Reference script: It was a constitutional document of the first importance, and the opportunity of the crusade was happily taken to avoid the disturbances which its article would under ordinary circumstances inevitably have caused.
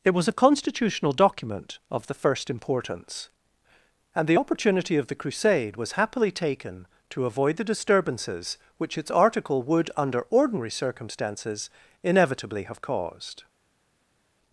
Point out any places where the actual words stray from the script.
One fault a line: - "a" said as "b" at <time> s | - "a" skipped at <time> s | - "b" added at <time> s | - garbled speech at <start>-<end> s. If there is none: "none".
none